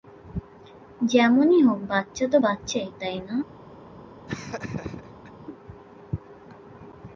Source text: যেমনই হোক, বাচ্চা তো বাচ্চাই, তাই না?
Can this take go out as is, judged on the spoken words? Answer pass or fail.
pass